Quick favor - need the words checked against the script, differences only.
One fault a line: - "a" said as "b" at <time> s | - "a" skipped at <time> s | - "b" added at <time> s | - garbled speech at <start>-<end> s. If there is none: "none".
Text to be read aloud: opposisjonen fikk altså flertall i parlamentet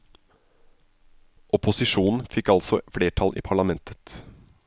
none